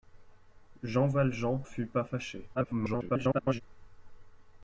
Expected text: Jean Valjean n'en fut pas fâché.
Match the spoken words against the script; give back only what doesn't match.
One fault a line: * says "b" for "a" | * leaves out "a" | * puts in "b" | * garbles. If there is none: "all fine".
* leaves out "n'en"
* garbles